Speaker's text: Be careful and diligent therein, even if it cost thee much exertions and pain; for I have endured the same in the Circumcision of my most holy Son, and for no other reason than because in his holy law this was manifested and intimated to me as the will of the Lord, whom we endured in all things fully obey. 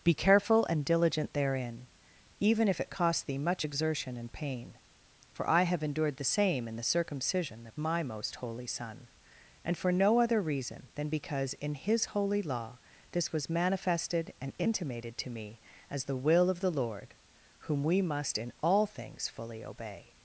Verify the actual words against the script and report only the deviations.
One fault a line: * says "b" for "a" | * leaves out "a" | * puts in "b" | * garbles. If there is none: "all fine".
* says "exertion" for "exertions"
* says "must" for "endured"